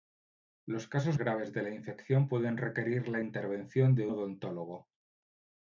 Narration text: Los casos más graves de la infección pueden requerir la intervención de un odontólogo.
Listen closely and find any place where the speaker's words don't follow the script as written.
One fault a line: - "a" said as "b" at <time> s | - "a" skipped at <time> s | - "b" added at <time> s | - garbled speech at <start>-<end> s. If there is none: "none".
- "más" skipped at 1.2 s
- "un" skipped at 4.1 s